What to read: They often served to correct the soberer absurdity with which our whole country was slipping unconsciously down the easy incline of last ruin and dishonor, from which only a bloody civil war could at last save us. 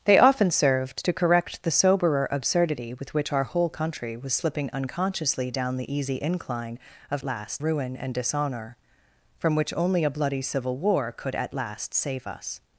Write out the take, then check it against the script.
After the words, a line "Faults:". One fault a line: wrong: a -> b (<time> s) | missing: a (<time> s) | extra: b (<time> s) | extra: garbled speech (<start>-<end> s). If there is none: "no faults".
They often served to correct the soberer absurdity with which our whole country was slipping unconsciously down the easy incline of last ruin and dishonor, from which only a bloody civil war could at last save us.
Faults:
no faults